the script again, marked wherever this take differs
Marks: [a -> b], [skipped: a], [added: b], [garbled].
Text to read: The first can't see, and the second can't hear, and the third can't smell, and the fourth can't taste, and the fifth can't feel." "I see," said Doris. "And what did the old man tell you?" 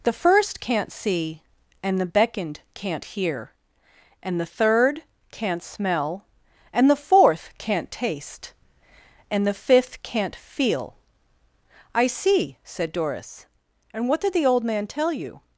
The first can't see, and the [second -> beckoned] can't hear, and the third can't smell, and the fourth can't taste, and the fifth can't feel." "I see," said Doris. "And what did the old man tell you?"